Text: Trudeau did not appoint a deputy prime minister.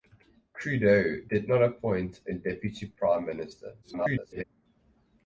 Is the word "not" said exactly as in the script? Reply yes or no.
yes